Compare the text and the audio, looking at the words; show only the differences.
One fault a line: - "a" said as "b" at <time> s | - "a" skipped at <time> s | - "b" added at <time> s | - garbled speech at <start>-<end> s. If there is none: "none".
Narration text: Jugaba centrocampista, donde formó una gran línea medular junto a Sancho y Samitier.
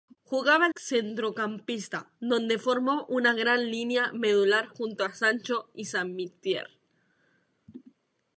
none